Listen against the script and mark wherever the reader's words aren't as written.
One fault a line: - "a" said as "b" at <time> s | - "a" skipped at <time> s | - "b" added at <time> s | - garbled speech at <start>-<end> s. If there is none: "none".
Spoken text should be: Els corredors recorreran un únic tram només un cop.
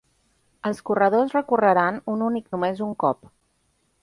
- "tram" skipped at 2.5 s